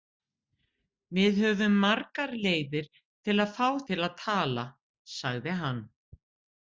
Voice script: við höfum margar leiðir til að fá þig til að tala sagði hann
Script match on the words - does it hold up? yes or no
no